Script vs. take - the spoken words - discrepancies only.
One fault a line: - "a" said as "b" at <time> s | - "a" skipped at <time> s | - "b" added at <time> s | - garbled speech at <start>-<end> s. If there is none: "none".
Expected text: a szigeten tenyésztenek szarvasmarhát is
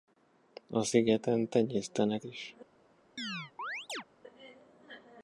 - "szarvasmarhát" skipped at 2.2 s